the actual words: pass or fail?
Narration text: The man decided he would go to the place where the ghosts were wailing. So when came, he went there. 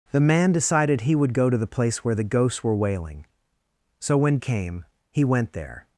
pass